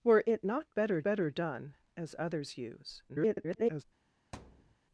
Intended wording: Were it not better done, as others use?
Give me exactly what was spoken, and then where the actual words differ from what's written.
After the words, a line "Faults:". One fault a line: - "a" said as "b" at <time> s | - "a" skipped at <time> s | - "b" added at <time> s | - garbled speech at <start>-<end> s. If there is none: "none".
Were it not better better done, as others use? [garbled]
Faults:
- "better" added at 1.0 s
- garbled speech at 3.1-3.8 s